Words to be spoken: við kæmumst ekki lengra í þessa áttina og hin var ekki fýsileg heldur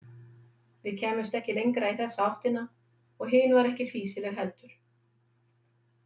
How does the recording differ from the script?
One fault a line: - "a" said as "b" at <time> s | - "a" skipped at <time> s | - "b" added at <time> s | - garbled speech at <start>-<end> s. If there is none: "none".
none